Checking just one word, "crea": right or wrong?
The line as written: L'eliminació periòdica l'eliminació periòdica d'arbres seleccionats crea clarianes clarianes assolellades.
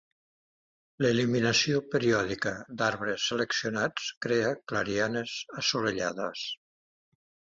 right